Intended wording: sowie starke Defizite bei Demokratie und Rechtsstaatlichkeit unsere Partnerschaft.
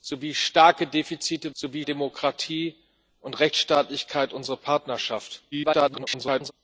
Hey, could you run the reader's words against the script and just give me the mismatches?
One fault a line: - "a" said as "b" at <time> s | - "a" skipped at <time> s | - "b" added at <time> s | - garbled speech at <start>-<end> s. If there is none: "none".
- "bei" said as "sowie" at 1.5 s
- garbled speech at 5.5-6.5 s